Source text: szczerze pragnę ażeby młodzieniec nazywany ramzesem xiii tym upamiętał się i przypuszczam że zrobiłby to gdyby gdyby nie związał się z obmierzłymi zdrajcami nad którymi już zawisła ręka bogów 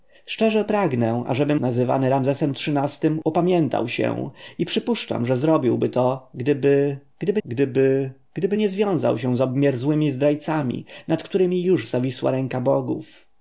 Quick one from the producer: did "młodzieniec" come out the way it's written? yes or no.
no